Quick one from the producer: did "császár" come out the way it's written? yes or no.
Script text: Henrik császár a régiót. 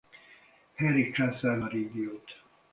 yes